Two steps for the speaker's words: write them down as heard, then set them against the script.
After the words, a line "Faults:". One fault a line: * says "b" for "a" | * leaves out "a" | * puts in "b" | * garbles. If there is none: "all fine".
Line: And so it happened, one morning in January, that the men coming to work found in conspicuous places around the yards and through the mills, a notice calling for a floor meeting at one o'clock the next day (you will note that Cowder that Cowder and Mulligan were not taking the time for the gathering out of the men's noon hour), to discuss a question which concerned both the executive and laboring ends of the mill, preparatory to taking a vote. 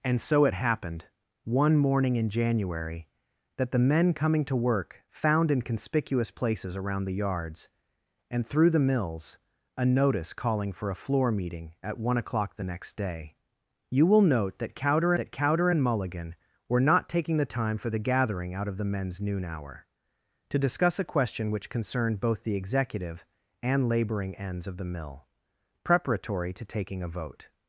And so it happened, one morning in January, that the men coming to work found in conspicuous places around the yards and through the mills, a notice calling for a floor meeting at one o'clock the next day (you will note that Cowder that Cowder and Mulligan were not taking the time for the gathering out of the men's noon hour), to discuss a question which concerned both the executive and laboring ends of the mill, preparatory to taking a vote.
Faults:
all fine